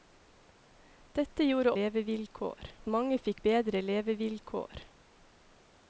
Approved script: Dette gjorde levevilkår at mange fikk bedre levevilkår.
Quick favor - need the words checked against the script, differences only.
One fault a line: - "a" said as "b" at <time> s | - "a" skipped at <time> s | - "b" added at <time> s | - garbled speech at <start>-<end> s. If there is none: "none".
none